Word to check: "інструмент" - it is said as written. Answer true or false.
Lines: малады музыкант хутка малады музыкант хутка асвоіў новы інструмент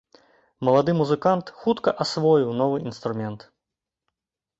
true